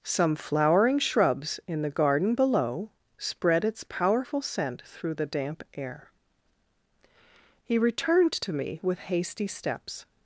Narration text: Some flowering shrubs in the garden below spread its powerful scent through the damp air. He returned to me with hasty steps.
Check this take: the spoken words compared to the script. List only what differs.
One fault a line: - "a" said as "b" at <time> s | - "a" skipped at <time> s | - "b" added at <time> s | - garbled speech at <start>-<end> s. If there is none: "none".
none